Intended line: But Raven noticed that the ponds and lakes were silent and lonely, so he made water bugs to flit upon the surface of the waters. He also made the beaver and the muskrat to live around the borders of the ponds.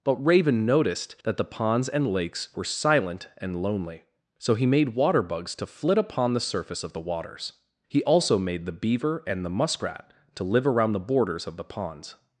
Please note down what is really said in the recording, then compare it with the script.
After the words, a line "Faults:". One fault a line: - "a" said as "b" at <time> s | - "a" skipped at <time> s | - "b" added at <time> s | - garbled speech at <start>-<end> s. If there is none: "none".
But Raven noticed that the ponds and lakes were silent and lonely, so he made water bugs to flit upon the surface of the waters. He also made the beaver and the muskrat to live around the borders of the ponds.
Faults:
none